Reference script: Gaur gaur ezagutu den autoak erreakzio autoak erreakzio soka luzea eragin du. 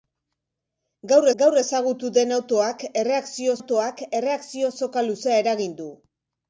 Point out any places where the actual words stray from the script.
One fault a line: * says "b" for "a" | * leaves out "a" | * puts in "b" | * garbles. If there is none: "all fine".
all fine